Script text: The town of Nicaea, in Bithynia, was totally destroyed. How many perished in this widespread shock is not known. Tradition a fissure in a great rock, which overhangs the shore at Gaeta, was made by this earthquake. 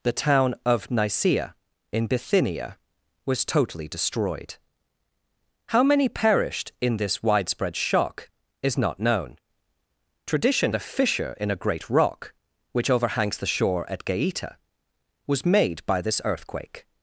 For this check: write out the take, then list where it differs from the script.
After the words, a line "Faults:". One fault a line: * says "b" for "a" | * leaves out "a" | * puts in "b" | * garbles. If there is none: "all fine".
The town of Nicaea, in Bithynia, was totally destroyed. How many perished in this widespread shock is not known. Tradition a fissure in a great rock, which overhangs the shore at Gaeta, was made by this earthquake.
Faults:
all fine